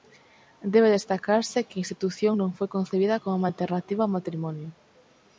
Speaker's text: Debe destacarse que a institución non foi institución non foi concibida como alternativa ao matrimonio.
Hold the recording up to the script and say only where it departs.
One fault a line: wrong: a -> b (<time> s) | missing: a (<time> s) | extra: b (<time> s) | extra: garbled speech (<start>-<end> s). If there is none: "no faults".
missing: institución non foi (2.7 s)